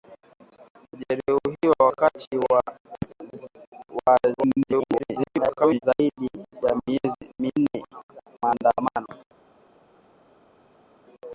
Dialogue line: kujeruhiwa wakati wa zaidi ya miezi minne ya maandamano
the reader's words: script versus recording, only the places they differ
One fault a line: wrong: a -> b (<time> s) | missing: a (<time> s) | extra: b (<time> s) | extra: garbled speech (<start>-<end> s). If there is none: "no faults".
extra: garbled speech (4.4-5.8 s)
missing: ya (7.8 s)